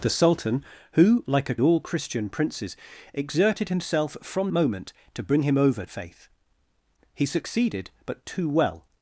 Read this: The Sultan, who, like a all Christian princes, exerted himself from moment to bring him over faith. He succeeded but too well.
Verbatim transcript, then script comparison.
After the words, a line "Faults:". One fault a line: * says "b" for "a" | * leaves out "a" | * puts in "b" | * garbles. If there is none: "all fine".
The Sultan, who, like a all Christian princes, exerted himself from moment to bring him over faith. He succeeded but too well.
Faults:
all fine